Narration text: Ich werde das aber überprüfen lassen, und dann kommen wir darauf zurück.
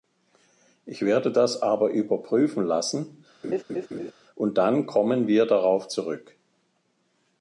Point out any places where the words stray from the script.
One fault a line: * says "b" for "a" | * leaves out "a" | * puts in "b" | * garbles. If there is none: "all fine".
all fine